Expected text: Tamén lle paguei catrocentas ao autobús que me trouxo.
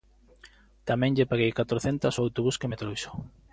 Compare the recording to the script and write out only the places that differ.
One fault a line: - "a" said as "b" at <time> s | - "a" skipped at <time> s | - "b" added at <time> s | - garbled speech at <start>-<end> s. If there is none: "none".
none